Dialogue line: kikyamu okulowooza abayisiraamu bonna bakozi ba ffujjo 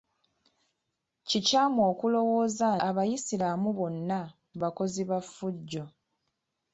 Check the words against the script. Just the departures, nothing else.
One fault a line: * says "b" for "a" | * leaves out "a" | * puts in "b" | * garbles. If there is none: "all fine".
all fine